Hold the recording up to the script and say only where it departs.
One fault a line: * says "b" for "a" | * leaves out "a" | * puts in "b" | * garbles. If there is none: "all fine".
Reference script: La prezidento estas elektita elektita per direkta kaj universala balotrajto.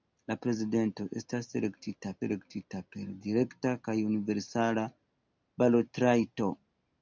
all fine